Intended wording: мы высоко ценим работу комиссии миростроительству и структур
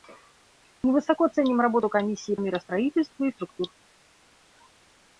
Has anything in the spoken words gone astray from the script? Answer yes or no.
no